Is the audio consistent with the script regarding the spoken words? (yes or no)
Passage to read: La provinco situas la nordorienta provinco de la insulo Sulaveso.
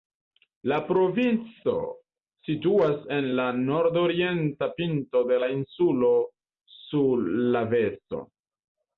no